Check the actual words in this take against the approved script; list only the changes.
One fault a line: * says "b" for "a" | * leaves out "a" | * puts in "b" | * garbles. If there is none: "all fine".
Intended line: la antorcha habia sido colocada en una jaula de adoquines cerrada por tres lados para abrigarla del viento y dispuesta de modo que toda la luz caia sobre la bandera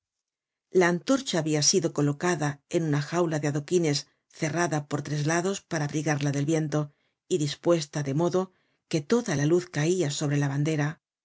all fine